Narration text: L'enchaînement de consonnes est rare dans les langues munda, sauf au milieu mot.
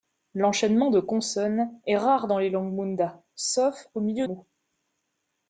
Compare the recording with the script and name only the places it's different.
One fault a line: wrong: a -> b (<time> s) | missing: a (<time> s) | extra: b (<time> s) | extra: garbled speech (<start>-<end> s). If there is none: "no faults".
no faults